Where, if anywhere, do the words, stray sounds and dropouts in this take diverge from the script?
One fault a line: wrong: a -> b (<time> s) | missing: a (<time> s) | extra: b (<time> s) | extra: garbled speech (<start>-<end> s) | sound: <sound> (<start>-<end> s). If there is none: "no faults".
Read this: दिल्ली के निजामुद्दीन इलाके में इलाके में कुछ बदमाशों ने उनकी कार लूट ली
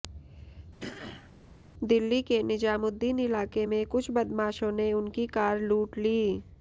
sound: throat clearing (0.8-1.3 s)
missing: इलाके में (3.8 s)